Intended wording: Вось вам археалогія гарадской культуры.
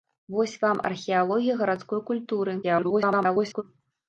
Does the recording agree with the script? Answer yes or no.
no